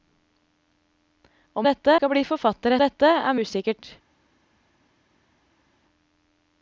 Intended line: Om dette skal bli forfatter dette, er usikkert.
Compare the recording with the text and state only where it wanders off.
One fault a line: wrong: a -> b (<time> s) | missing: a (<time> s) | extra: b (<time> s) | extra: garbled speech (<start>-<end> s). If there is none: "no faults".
no faults